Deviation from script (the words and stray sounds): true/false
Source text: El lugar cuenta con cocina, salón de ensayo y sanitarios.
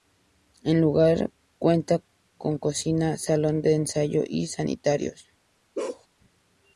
true